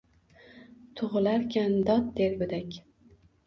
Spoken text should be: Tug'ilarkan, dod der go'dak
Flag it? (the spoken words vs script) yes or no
no